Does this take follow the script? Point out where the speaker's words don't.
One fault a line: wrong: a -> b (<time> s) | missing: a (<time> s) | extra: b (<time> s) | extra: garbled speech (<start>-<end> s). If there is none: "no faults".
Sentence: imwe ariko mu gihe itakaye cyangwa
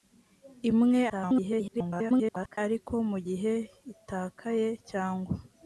extra: garbled speech (1.1-2.6 s)